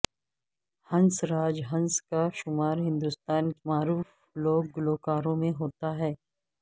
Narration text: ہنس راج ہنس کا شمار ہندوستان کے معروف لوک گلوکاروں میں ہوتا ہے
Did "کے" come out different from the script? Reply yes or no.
yes